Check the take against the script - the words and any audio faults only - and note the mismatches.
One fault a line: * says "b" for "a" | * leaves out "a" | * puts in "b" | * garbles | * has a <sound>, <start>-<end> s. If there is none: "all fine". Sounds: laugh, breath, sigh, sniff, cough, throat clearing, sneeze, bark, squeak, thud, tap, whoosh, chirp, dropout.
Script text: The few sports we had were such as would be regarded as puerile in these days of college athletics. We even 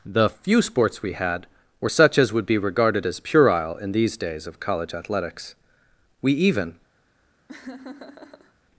* has a laugh, 7.5-8.5 s